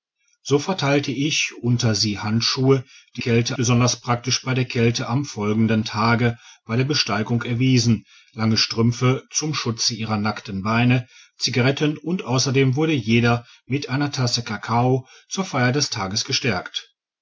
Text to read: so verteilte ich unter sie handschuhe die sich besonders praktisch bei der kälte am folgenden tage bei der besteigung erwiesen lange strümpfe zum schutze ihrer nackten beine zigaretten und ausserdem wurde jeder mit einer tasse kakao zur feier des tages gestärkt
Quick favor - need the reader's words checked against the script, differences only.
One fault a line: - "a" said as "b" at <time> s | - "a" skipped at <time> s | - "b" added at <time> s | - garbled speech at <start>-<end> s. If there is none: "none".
- "sich" said as "kälte" at 3.2 s